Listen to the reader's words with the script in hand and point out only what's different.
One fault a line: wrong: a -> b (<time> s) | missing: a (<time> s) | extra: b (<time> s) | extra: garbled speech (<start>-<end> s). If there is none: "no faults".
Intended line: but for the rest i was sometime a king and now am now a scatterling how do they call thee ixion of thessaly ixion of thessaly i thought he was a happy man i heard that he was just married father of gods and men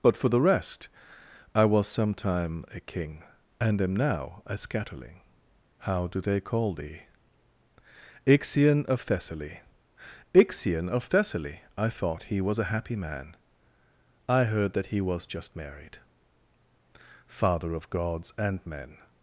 missing: now (3.8 s)